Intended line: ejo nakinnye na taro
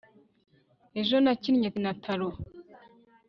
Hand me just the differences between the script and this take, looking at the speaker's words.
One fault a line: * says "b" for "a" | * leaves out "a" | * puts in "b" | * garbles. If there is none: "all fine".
all fine